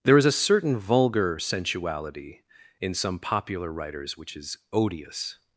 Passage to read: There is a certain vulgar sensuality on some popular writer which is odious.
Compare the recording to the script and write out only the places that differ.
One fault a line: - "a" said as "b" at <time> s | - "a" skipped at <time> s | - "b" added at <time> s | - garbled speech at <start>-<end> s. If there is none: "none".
- "on" said as "in" at 2.8 s
- "writer" said as "writers" at 3.7 s